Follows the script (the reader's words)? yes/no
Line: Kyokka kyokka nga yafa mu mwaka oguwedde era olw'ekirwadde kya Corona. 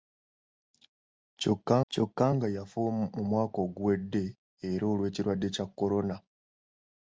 yes